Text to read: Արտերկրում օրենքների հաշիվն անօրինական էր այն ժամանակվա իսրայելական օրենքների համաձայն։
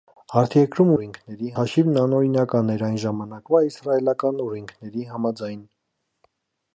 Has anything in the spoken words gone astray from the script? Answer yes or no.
no